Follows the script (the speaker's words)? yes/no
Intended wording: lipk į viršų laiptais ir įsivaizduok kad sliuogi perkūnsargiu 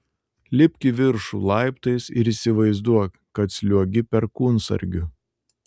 yes